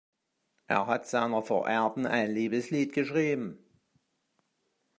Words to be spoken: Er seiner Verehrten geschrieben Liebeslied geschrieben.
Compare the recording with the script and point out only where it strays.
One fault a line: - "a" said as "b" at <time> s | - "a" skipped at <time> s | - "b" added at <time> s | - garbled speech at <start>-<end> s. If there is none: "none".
- "hat" added at 0.9 s
- "geschrieben" said as "ein" at 2.1 s